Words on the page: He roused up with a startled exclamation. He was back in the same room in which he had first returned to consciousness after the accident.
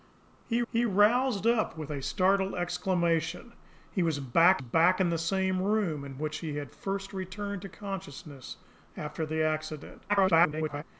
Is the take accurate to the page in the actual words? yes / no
no